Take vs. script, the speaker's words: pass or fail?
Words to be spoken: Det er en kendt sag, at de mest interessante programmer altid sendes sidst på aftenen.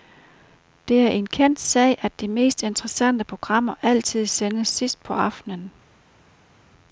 pass